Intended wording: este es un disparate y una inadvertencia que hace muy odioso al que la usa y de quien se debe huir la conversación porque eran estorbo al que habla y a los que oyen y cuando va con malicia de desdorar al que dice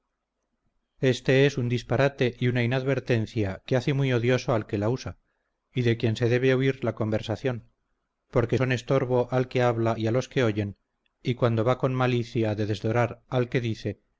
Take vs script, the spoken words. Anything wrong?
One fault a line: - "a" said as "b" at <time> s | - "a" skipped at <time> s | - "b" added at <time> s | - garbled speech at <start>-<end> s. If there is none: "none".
- "eran" said as "son" at 8.5 s